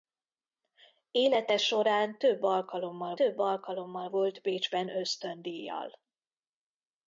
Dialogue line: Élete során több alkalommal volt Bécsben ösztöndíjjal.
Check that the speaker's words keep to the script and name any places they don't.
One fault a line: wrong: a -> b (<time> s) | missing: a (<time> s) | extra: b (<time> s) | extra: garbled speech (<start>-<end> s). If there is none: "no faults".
extra: több alkalommal (3.1 s)